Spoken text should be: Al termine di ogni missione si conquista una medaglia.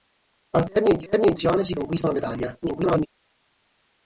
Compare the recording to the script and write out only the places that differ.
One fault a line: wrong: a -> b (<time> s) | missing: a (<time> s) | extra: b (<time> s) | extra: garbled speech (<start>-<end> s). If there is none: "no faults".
wrong: ogni -> termine (1.1 s)
extra: garbled speech (2.6-3.1 s)